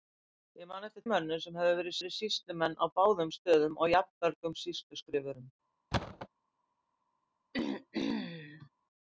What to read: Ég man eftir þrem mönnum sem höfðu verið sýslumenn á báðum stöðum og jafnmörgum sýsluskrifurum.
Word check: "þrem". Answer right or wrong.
wrong